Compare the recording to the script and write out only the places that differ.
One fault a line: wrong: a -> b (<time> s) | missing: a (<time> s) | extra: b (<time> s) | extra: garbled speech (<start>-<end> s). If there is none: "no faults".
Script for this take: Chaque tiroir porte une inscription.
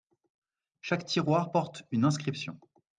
no faults